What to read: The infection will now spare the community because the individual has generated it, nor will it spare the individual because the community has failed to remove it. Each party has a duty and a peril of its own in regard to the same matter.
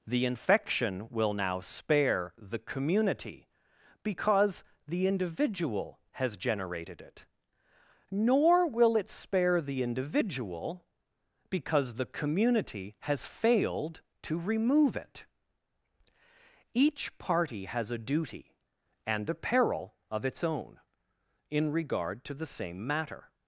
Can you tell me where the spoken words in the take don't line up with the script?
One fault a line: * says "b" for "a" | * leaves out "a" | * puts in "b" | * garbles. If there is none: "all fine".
all fine